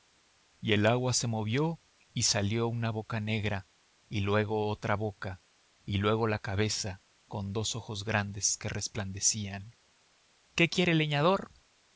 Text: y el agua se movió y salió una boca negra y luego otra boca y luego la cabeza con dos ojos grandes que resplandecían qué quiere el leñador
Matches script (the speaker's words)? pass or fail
pass